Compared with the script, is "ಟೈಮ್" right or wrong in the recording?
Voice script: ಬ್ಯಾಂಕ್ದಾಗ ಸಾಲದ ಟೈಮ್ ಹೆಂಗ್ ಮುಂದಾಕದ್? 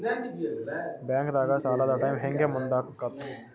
right